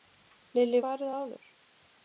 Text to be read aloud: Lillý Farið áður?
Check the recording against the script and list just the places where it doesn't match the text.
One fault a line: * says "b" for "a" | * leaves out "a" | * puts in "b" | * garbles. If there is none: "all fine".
all fine